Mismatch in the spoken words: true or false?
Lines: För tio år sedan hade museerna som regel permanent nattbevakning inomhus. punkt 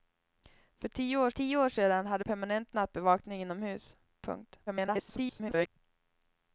true